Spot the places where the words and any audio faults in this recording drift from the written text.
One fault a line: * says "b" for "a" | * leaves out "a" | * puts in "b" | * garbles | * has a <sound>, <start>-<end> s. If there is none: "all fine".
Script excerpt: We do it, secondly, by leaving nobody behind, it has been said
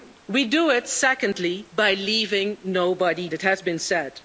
* leaves out "behind"